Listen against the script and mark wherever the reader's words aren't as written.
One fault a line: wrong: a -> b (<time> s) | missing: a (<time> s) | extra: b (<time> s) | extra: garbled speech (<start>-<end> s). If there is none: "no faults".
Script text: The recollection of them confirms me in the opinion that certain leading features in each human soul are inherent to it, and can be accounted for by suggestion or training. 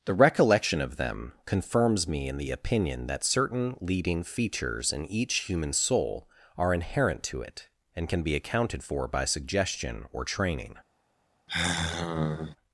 no faults